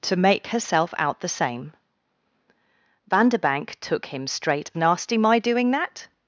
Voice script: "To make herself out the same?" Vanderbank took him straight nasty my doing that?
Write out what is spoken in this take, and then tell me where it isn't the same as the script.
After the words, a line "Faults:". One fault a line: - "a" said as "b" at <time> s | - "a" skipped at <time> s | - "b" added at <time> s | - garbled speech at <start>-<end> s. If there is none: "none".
"To make herself out the same?" Vanderbank took him straight nasty my doing that?
Faults:
none